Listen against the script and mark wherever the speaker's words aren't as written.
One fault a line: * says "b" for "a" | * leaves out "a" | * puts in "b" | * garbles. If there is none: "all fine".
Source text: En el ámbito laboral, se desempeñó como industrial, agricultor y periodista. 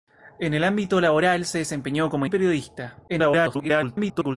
* leaves out "industrial agricultor"
* garbles